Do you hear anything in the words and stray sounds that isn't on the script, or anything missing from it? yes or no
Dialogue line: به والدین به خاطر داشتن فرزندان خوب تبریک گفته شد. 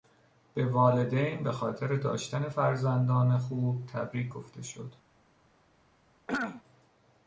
yes